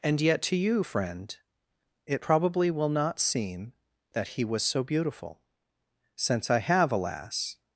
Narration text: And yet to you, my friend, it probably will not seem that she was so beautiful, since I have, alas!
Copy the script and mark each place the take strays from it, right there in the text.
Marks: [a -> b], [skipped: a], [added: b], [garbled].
And yet to you, [skipped: my] friend, it probably will not seem that [she -> he] was so beautiful, since I have, alas!